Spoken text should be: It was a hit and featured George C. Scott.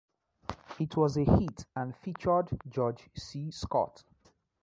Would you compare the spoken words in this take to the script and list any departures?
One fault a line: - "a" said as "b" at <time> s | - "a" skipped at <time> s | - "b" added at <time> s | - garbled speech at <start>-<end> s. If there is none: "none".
none